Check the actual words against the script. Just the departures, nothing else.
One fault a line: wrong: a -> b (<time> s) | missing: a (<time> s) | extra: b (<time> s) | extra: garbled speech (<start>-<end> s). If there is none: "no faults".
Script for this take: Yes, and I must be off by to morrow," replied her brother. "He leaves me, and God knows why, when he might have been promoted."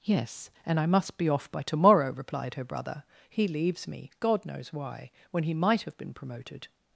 missing: and (4.1 s)